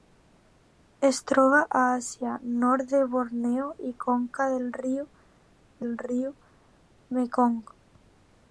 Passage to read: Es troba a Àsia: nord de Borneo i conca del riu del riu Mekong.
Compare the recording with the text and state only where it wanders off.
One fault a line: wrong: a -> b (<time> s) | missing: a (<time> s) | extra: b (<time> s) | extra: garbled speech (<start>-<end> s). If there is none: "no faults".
no faults